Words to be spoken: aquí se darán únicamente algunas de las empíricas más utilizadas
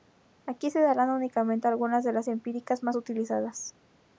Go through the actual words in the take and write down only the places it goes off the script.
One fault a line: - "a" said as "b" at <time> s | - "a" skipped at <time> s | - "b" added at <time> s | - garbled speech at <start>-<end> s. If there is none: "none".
none